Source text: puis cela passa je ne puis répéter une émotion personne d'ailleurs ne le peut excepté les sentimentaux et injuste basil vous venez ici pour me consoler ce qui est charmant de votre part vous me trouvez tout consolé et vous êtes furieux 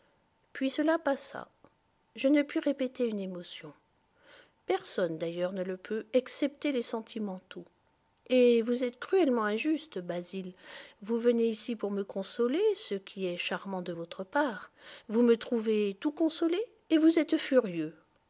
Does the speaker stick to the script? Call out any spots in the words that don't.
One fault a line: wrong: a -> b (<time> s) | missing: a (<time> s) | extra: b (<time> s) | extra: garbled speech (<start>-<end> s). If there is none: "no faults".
extra: vous êtes cruellement (8.6 s)